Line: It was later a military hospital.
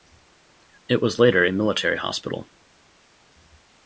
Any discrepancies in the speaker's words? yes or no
no